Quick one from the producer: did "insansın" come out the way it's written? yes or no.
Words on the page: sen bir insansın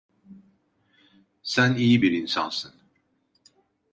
yes